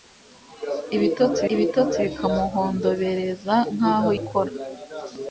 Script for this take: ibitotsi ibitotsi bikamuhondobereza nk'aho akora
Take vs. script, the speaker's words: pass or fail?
pass